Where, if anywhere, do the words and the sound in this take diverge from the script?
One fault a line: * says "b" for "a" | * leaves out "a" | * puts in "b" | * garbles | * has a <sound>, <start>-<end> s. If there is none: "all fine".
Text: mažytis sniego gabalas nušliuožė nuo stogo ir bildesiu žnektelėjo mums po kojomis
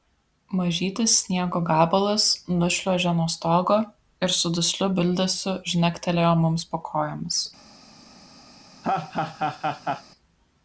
* puts in "su dusliu"
* has a laugh, 8.8-10.0 s